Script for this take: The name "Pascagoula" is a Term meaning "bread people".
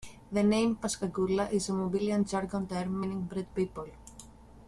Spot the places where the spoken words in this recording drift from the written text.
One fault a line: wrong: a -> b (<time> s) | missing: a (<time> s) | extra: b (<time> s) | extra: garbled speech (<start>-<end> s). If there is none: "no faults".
extra: Mobilian Jargon (1.7 s)